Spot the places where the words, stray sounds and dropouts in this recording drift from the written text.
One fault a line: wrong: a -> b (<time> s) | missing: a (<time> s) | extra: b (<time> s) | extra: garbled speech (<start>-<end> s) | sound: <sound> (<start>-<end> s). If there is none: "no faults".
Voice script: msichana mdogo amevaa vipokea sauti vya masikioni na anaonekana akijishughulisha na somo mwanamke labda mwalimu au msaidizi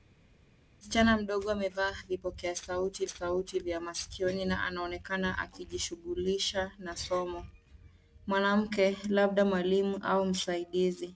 extra: sauti (3.1 s)